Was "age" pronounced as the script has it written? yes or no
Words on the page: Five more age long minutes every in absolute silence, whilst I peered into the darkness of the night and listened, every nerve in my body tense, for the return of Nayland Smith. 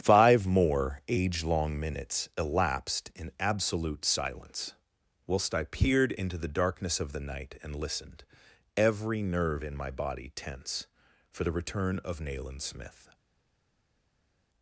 yes